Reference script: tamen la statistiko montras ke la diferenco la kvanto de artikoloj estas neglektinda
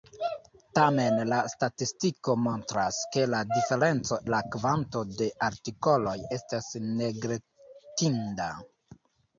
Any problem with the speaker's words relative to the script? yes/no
no